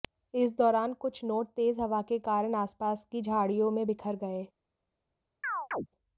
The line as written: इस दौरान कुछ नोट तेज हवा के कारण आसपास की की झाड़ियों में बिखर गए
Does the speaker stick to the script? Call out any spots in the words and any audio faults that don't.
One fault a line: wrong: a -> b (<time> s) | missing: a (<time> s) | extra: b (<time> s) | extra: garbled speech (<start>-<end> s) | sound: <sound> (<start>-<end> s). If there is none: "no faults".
missing: की (3.2 s)
sound: chirp (5.4-5.9 s)